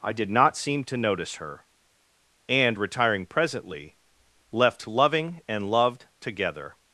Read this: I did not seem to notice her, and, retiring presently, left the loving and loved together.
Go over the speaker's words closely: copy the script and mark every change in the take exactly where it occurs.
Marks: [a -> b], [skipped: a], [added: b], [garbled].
I did not seem to notice her, and, retiring presently, left [skipped: the] loving and loved together.